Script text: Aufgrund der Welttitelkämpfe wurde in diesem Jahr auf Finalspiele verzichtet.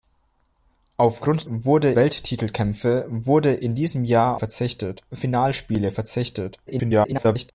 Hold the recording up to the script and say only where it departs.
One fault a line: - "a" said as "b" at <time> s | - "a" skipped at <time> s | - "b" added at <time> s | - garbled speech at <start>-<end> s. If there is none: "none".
- "der" said as "wurde" at 1.5 s
- "auf" said as "verzichtet" at 4.3 s
- garbled speech at 6.7-7.5 s